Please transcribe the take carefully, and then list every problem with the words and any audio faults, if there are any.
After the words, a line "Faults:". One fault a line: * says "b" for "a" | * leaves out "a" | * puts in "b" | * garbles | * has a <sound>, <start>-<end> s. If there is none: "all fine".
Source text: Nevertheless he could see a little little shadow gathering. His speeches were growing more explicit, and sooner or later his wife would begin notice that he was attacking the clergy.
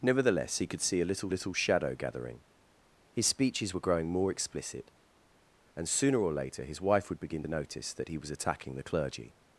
Nevertheless he could see a little little shadow gathering. His speeches were growing more explicit, and sooner or later his wife would begin notice that he was attacking the clergy.
Faults:
all fine